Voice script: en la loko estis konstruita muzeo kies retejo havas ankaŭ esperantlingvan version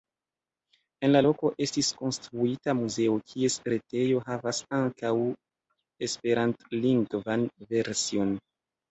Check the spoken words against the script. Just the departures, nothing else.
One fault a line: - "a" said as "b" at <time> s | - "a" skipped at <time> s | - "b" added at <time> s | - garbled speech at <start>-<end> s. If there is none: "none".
none